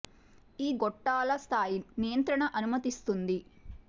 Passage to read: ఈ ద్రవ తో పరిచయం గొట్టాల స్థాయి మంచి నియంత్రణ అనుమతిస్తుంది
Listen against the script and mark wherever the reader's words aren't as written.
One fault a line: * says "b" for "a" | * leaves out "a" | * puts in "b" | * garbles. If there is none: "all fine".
* leaves out "ద్రవ తో పరిచయం"
* leaves out "మంచి"